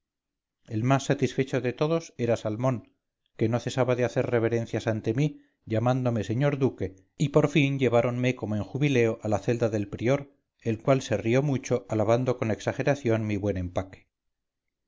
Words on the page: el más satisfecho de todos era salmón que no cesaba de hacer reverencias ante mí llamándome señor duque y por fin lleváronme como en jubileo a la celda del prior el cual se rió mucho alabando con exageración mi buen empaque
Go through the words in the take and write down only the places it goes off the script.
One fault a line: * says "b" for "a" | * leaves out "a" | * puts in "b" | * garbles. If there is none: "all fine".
all fine